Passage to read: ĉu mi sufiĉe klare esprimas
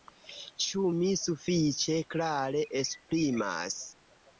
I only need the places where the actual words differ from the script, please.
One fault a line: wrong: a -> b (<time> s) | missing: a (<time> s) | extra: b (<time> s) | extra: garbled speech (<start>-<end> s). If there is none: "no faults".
no faults